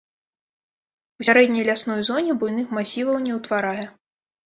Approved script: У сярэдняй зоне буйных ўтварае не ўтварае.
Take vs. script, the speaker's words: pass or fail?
fail